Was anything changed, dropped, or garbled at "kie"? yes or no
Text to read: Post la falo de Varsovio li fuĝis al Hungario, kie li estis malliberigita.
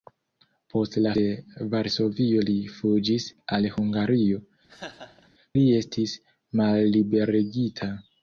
yes